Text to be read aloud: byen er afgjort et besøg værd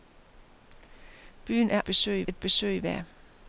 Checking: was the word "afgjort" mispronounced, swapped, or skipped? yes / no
yes